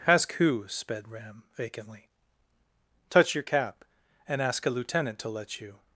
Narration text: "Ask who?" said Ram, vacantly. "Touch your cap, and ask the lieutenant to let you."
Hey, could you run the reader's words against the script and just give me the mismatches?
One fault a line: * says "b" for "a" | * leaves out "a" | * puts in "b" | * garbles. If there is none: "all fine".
* says "sped" for "said"
* says "a" for "the"